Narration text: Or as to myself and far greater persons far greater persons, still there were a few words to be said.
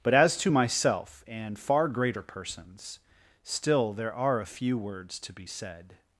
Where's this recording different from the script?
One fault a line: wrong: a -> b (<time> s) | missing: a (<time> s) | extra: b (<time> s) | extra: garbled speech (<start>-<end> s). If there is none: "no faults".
wrong: Or -> But (0.0 s)
missing: far greater persons (3.0 s)
wrong: were -> are (4.1 s)